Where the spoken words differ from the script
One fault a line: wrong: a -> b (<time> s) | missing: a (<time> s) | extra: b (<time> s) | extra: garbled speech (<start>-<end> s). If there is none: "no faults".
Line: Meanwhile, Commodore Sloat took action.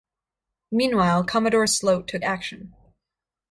no faults